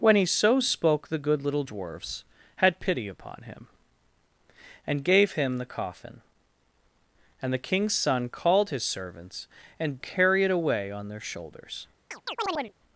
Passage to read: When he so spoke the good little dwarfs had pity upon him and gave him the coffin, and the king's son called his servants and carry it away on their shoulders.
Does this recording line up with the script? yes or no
yes